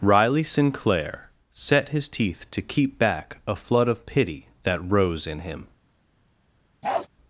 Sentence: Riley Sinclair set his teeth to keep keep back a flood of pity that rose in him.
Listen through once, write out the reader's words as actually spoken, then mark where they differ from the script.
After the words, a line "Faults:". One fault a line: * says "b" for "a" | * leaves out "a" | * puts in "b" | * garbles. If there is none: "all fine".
Riley Sinclair set his teeth to keep back a flood of pity that rose in him.
Faults:
* leaves out "keep"